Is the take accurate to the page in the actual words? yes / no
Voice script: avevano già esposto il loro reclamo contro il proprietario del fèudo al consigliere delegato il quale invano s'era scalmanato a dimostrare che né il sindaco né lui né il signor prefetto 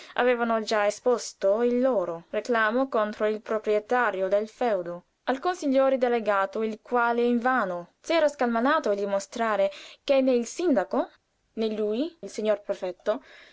no